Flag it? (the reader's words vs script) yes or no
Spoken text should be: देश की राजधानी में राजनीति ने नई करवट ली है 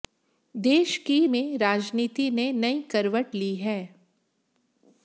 yes